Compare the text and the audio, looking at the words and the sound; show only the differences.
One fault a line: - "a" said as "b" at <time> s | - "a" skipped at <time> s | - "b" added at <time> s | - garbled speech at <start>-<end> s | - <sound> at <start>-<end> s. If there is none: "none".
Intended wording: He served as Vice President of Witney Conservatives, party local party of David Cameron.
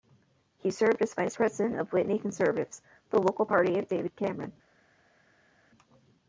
- "party" said as "the" at 3.1 s